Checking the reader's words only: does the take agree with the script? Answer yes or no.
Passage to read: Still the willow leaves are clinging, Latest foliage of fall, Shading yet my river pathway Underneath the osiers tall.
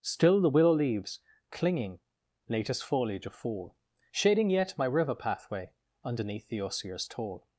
no